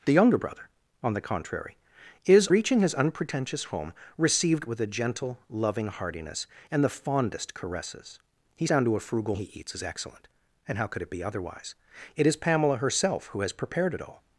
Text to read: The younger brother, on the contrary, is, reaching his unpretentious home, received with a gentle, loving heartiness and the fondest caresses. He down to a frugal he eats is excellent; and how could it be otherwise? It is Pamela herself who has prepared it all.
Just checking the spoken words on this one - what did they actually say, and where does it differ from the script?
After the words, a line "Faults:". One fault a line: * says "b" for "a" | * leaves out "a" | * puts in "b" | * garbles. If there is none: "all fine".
The younger brother, on the contrary, is, reaching his unpretentious home, received with a gentle, loving heartiness and the fondest caresses. He down to a frugal he eats is excellent; and how could it be otherwise? It is Pamela herself who has prepared it all.
Faults:
all fine